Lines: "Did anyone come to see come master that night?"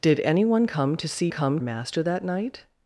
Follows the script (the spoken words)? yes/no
yes